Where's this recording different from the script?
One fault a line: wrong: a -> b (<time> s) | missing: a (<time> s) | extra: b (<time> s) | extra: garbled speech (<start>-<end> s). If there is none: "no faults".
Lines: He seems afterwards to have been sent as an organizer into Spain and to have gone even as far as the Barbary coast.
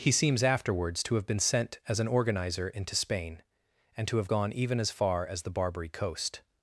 no faults